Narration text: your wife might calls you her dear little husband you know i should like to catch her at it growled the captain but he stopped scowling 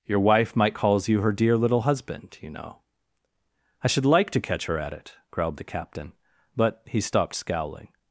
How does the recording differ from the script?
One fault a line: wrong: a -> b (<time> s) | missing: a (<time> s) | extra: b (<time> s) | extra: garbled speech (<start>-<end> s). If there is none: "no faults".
no faults